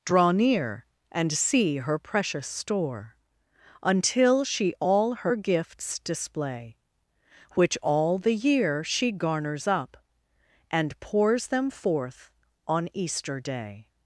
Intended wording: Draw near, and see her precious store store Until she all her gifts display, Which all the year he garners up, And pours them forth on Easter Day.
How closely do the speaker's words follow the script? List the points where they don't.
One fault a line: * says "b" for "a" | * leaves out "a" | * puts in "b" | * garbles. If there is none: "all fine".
* leaves out "store"
* says "she" for "he"